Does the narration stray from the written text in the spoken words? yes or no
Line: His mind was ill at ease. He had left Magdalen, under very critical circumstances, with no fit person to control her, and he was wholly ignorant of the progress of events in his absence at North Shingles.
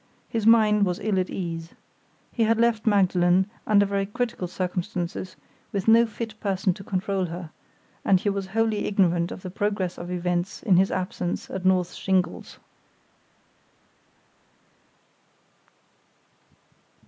no